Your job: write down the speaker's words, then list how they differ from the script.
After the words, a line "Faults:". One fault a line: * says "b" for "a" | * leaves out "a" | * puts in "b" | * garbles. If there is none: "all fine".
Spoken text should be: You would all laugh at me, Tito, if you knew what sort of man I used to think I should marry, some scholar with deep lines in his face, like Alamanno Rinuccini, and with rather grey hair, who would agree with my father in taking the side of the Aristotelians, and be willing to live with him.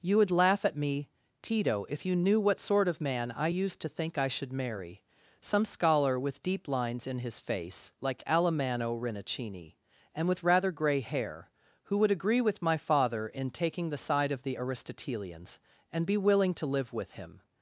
You would laugh at me, Tito, if you knew what sort of man I used to think I should marry, some scholar with deep lines in his face, like Alamanno Rinuccini, and with rather grey hair, who would agree with my father in taking the side of the Aristotelians, and be willing to live with him.
Faults:
* leaves out "all"